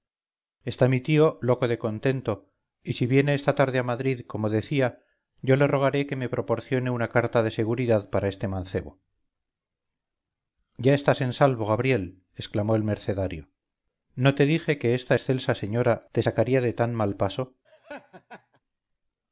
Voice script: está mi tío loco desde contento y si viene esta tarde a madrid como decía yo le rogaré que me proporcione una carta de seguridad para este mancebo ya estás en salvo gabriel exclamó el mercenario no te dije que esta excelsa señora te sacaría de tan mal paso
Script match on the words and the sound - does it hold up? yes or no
no